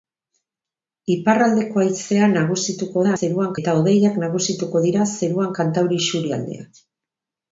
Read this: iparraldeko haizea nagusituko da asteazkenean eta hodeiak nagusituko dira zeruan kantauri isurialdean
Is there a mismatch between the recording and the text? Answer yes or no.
yes